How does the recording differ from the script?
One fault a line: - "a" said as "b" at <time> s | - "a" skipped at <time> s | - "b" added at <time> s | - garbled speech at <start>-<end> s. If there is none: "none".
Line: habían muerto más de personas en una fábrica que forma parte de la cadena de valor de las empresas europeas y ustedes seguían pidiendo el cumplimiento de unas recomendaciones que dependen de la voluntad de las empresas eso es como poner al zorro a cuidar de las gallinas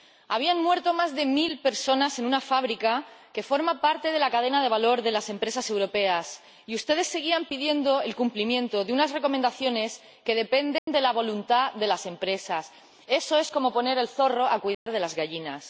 - "mil" added at 1.2 s